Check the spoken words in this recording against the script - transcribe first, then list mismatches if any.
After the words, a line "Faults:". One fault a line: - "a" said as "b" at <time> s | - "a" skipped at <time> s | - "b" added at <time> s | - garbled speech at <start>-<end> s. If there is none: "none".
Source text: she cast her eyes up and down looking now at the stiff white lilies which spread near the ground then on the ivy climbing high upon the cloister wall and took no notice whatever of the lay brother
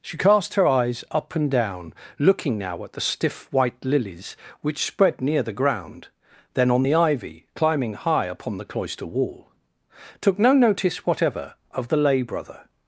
she cast her eyes up and down looking now at the stiff white lilies which spread near the ground then on the ivy climbing high upon the cloister wall took no notice whatever of the lay brother
Faults:
- "and" skipped at 9.5 s